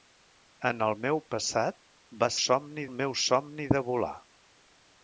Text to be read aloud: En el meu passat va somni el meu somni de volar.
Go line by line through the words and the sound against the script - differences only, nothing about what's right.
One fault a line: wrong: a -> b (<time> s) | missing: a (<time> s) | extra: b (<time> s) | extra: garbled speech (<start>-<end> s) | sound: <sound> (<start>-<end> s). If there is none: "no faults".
no faults